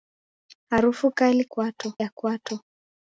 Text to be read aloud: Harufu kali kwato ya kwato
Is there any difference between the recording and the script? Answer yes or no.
no